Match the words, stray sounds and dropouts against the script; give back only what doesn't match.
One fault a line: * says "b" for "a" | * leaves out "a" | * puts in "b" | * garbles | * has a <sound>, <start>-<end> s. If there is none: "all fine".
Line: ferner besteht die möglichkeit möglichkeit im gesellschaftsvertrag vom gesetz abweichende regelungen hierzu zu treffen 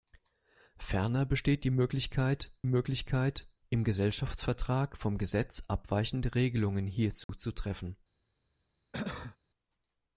* has a dropout, 7.2-7.3 s
* has a cough, 8.9-9.4 s